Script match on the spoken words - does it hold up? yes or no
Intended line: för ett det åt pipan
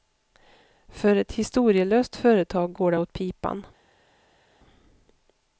no